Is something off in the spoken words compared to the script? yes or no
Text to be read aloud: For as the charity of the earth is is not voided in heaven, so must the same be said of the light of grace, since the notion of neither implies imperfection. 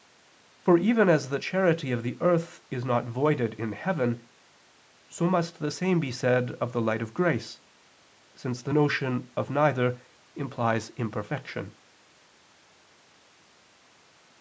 yes